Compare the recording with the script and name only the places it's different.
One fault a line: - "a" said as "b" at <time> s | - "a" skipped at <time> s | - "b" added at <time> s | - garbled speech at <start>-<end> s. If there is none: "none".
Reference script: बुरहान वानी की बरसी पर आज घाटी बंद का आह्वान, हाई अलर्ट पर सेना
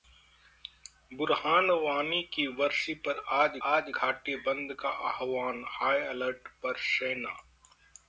- "आज" added at 3.7 s